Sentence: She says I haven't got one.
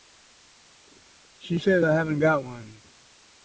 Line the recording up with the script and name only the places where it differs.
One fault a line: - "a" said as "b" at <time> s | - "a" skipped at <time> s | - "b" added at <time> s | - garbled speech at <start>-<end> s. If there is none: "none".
none